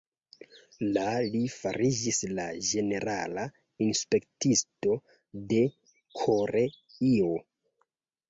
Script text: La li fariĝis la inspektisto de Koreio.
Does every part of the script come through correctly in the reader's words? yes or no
no